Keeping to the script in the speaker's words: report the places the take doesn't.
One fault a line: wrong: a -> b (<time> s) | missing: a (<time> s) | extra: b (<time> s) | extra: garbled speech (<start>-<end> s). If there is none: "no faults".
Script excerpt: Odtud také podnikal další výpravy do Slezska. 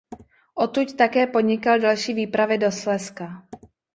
no faults